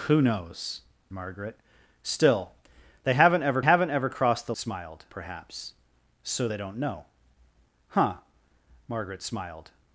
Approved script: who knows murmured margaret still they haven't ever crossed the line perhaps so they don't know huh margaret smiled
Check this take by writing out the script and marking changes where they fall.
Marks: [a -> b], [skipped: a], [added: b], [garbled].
who knows [skipped: murmured] margaret still they haven't ever [added: haven't ever] crossed the [line -> smiled] perhaps so they don't know huh margaret smiled